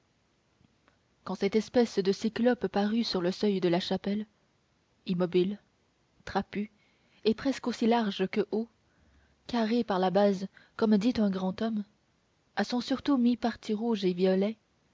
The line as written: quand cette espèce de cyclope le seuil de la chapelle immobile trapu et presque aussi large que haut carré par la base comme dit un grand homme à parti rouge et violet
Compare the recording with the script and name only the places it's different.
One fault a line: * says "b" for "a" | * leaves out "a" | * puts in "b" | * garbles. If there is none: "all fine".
* puts in "parut sur"
* puts in "son surtout mi"